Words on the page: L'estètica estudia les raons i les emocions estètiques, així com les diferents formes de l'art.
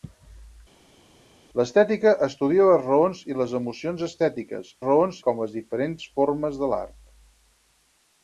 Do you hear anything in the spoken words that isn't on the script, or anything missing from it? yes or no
yes